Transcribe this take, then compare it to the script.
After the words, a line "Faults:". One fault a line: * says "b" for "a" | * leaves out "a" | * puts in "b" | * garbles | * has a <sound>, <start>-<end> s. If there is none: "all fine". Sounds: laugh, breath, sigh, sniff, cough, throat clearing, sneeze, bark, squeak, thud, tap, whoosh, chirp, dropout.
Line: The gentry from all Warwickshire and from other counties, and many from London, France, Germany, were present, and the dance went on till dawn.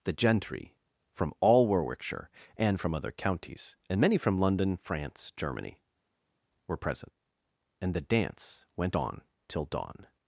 The gentry from all Warwickshire and from other counties, and many from London, France, Germany, were present, and the dance went on till dawn.
Faults:
all fine